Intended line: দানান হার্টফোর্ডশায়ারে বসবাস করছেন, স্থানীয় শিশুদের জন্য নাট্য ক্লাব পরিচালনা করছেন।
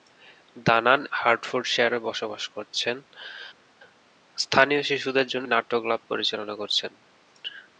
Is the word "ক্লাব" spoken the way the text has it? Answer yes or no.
yes